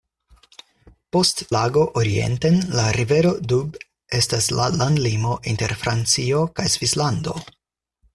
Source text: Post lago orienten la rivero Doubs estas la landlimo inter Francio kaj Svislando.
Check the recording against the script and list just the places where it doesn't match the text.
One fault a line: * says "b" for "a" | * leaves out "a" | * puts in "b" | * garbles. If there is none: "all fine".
all fine